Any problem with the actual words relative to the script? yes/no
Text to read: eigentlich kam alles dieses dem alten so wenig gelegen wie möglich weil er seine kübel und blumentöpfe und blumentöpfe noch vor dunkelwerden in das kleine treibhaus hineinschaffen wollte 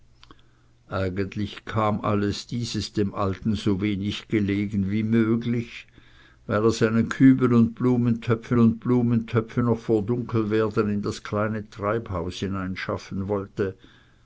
no